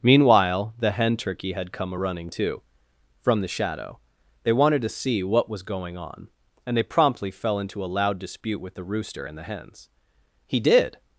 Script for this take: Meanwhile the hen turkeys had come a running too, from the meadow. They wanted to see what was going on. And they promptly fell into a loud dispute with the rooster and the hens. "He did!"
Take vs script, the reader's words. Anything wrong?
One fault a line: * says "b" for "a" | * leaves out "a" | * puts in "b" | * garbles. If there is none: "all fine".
* says "turkey" for "turkeys"
* says "shadow" for "meadow"